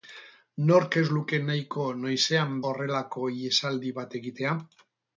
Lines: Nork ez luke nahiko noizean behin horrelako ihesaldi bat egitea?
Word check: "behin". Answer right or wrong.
wrong